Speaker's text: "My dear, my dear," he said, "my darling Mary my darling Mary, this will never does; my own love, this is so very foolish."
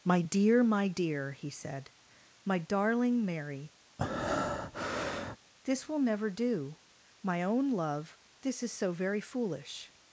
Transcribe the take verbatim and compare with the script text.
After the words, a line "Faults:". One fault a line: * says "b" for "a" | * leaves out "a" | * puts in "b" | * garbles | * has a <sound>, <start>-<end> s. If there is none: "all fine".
"My dear, my dear," he said, "my darling Mary, this will never do; my own love, this is so very foolish."
Faults:
* leaves out "my darling Mary"
* has a breath, 4.0-5.4 s
* says "do" for "does"